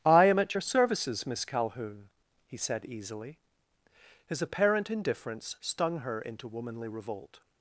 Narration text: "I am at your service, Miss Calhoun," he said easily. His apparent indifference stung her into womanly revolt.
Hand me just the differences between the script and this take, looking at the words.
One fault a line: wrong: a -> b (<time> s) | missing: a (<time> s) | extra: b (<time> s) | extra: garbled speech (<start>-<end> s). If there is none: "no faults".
wrong: service -> services (0.6 s)